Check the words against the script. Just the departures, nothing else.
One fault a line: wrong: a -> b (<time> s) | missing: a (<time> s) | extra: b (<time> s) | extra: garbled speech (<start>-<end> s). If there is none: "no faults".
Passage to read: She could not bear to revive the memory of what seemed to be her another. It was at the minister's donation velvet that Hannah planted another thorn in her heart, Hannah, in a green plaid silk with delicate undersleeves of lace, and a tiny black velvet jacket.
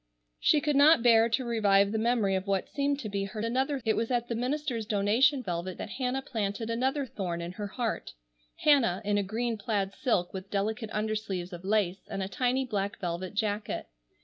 no faults